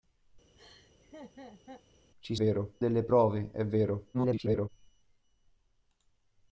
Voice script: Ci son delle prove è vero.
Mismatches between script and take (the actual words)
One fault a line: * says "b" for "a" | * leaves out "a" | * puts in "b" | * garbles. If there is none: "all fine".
* says "vero" for "son"
* garbles